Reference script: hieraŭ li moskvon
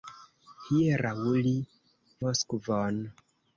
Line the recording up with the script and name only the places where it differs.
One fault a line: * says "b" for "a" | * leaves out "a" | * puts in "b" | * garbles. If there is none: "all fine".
all fine